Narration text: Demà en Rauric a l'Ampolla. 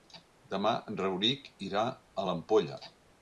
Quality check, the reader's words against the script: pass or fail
fail